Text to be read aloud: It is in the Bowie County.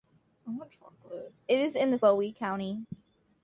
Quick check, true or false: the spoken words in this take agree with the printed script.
true